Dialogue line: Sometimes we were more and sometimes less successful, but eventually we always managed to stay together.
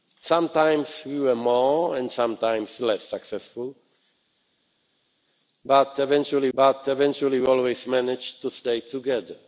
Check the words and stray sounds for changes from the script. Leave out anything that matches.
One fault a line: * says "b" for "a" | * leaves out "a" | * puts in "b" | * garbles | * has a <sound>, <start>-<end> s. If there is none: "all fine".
* puts in "but eventually"